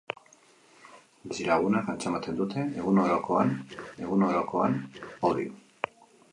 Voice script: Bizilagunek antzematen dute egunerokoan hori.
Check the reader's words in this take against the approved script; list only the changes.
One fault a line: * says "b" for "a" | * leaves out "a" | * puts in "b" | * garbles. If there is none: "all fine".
* puts in "egunerokoan"